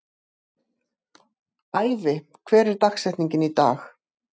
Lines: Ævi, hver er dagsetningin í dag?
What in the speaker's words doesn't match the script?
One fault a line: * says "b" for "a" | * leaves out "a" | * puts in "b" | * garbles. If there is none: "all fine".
all fine